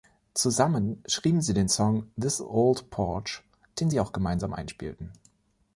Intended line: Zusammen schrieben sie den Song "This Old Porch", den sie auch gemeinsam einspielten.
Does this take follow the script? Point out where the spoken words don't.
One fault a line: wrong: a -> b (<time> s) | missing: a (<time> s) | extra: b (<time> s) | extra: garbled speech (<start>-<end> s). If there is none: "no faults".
no faults